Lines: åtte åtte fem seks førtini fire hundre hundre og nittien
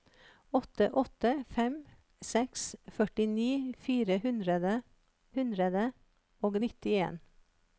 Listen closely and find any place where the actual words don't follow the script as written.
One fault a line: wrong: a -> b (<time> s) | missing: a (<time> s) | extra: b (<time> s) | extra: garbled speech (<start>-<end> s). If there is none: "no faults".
no faults